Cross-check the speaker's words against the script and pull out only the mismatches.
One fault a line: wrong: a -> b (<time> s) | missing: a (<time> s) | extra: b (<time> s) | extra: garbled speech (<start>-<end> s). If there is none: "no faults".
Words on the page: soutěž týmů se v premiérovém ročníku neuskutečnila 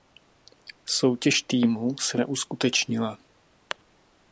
missing: v premiérovém ročníku (2.2 s)